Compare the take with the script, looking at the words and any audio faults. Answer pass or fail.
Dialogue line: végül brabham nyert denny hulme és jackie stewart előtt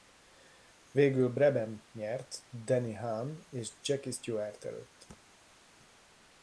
pass